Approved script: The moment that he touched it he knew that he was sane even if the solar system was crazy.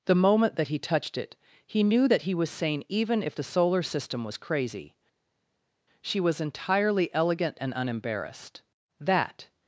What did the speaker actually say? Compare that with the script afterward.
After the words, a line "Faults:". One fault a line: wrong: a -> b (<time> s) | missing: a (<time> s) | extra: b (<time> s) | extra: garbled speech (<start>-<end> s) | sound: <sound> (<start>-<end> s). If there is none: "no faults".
The moment that he touched it he knew that he was sane even if the solar system was crazy. She was entirely elegant and unembarrassed. That
Faults:
extra: She was entirely elegant and unembarrassed That (6.0 s)